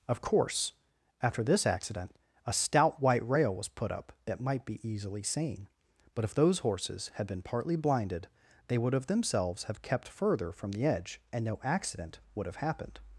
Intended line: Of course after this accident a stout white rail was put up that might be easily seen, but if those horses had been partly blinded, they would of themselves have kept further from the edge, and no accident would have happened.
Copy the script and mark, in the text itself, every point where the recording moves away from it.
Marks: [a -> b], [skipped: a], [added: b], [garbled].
Of course after this accident a stout white rail was put up that might be easily seen, but if those horses had been partly blinded, they would of themselves have kept further from the edge, and no accident would have happened.